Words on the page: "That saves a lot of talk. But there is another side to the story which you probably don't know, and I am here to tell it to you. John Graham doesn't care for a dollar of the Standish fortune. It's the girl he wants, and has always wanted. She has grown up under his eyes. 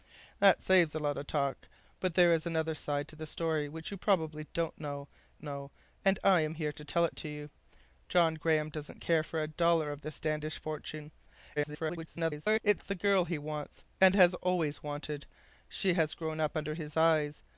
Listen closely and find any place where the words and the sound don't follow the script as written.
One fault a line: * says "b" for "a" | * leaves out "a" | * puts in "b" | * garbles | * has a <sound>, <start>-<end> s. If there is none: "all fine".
* puts in "know"
* garbles